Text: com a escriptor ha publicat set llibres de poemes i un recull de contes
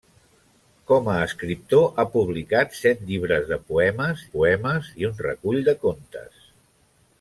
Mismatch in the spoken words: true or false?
true